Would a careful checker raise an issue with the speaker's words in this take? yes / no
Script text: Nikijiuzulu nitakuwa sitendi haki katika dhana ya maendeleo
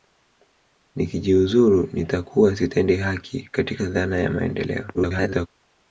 yes